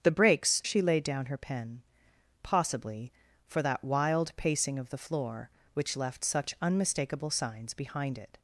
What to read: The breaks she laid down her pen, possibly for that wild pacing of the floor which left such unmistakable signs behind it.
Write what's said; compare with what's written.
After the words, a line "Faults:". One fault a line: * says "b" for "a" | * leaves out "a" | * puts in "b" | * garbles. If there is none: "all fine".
The breaks she laid down her pen, possibly for that wild pacing of the floor which left such unmistakable signs behind it.
Faults:
all fine